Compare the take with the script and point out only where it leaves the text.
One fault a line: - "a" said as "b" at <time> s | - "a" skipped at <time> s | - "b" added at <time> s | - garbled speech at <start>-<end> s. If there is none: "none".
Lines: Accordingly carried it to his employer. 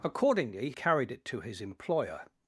none